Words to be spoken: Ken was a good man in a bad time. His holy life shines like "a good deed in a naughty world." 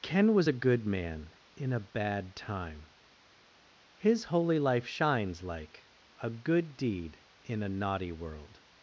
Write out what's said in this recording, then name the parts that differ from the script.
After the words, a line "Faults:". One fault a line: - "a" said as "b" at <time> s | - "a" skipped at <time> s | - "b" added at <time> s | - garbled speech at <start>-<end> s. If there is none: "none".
Ken was a good man in a bad time. His holy life shines like "a good deed in a naughty world."
Faults:
none